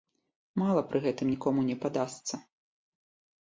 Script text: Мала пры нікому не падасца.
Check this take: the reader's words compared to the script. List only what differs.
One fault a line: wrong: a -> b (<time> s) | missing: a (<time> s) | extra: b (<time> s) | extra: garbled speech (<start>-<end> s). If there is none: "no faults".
extra: гэтым (1.1 s)